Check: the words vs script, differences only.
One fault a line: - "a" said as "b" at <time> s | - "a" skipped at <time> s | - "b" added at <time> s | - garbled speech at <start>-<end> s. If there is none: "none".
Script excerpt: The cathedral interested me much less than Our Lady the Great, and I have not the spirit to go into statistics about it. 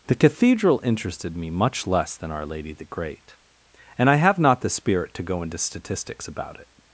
none